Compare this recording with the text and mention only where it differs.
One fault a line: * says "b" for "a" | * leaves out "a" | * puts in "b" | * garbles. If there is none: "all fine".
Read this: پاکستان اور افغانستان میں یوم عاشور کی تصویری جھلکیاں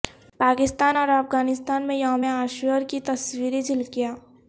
all fine